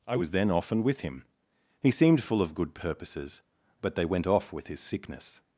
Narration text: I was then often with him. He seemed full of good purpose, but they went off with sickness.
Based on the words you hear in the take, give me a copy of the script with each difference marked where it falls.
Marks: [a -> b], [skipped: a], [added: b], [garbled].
I was then often with him. He seemed full of good [purpose, -> purposes] but they went off with [added: his] sickness.